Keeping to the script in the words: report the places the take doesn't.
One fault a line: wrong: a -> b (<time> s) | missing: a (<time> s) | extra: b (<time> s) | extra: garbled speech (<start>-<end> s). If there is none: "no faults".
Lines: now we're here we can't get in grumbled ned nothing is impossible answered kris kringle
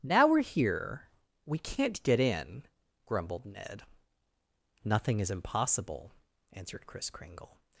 no faults